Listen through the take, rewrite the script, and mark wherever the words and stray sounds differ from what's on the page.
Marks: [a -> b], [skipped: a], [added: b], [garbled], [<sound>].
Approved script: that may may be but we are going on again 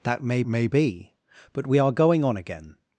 that may may be but we are going on again